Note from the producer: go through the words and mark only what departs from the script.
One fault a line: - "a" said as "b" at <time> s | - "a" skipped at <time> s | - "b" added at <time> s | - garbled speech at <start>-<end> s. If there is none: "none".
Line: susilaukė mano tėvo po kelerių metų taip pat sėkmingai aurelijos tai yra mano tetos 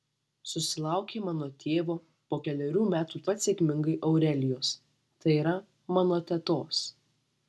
- "taip" skipped at 3.2 s